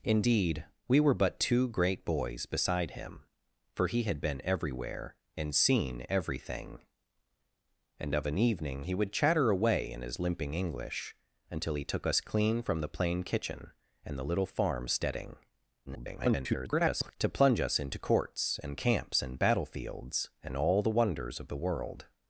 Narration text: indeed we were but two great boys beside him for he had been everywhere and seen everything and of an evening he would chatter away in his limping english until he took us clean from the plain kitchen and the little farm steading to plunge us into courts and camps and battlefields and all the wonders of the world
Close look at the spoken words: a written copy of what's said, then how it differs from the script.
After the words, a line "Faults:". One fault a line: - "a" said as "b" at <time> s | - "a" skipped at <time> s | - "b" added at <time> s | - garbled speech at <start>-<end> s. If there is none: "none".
indeed we were but two great boys beside him for he had been everywhere and seen everything and of an evening he would chatter away in his limping english until he took us clean from the plain kitchen and the little farm steading [garbled] to plunge us into courts and camps and battlefields and all the wonders of the world
Faults:
- garbled speech at 15.9-17.2 s